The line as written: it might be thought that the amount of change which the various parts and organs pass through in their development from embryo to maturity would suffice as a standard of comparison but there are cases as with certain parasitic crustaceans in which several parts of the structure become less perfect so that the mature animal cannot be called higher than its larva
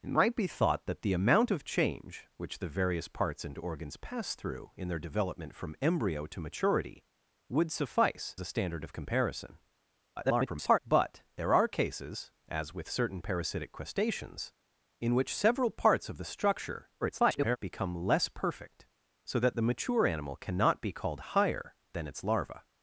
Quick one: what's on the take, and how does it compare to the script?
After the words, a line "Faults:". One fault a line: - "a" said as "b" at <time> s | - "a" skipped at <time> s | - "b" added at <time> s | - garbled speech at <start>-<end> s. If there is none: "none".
it might be thought that the amount of change which the various parts and organs pass through in their development from embryo to maturity would suffice a standard of comparison [garbled] but there are cases as with certain parasitic crustaceans in which several parts of the structure [garbled] become less perfect so that the mature animal cannot be called higher than its larva
Faults:
- "as" skipped at 8.3 s
- garbled speech at 10.2-10.8 s
- garbled speech at 17.0-17.6 s